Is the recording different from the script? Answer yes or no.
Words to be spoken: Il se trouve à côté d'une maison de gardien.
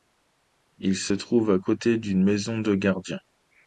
no